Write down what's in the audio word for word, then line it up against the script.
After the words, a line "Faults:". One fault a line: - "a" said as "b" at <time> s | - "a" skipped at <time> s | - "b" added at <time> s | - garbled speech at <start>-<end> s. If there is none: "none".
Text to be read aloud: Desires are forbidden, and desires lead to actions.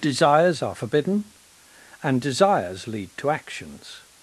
Desires are forbidden, and desires lead to actions.
Faults:
none